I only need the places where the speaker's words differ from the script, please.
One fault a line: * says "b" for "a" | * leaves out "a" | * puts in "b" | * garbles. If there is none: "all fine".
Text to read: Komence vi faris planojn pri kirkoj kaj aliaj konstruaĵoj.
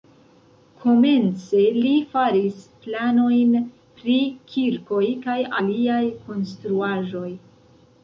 * says "li" for "vi"